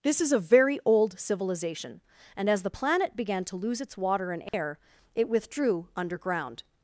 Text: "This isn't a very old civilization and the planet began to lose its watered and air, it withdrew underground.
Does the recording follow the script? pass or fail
fail